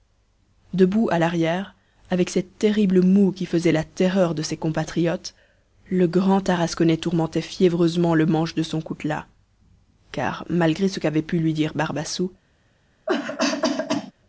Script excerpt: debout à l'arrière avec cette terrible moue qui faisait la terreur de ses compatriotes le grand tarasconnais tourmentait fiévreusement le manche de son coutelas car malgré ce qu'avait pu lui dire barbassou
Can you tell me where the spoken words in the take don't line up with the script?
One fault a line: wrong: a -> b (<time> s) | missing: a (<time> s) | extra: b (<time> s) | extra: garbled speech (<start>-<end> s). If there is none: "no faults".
no faults